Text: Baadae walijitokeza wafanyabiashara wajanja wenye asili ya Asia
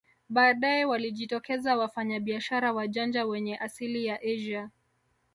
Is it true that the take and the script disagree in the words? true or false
false